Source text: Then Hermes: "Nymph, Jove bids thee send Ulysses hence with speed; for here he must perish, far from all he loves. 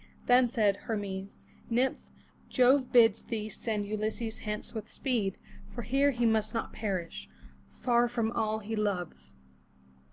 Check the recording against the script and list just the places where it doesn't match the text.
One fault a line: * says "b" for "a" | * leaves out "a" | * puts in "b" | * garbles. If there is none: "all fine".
* puts in "said"
* puts in "not"